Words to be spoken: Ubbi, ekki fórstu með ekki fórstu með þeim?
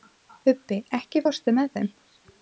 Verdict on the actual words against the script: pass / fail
fail